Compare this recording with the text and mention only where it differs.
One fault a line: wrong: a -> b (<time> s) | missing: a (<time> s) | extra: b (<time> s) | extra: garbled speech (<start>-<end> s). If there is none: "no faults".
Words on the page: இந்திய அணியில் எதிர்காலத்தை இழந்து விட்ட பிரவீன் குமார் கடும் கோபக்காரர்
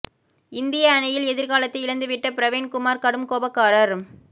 no faults